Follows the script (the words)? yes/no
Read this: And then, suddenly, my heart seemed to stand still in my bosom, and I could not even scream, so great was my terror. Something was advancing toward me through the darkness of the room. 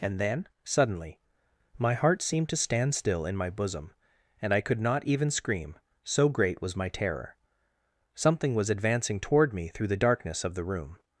yes